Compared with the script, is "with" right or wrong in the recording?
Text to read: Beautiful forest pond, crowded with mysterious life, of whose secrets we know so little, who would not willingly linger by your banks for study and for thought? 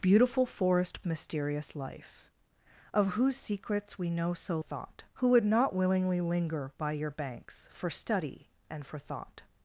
wrong